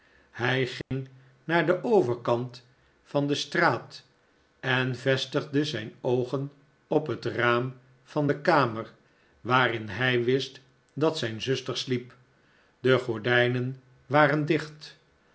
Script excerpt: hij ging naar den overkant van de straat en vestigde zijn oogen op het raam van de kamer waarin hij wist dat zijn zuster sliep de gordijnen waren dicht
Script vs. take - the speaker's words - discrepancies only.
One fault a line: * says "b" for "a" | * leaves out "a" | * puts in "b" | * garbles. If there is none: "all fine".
all fine